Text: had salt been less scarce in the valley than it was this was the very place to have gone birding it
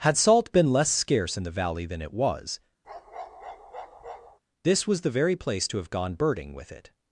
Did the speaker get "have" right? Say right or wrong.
right